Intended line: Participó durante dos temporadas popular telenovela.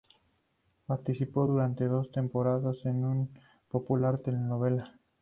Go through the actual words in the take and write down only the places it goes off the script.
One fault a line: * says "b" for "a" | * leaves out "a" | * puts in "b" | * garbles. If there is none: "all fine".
* puts in "en una"